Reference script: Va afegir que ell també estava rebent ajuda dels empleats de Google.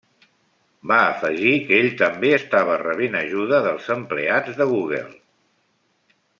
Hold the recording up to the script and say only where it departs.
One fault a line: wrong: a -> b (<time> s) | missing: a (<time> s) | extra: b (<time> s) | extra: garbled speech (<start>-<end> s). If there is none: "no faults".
no faults